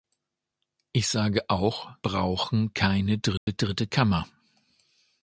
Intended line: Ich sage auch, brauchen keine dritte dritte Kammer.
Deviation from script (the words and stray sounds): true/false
true